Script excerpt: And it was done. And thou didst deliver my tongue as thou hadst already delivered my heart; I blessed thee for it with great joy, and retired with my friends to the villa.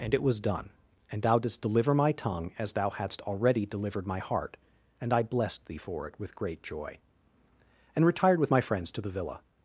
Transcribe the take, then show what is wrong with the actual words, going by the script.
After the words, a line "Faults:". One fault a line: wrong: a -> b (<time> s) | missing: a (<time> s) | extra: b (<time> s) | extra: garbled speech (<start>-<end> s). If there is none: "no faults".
And it was done. And thou didst deliver my tongue as thou hadst already delivered my heart; and I blessed thee for it with great joy, and retired with my friends to the villa.
Faults:
extra: and (5.0 s)